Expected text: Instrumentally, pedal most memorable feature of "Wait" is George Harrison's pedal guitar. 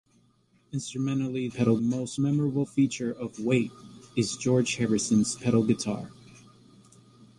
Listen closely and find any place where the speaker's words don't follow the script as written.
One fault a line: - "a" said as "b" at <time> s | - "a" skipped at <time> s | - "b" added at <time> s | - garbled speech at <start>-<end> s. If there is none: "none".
none